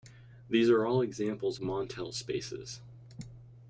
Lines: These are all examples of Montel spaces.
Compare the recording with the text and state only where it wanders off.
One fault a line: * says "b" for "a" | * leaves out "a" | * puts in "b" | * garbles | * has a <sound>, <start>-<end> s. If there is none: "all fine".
* leaves out "of"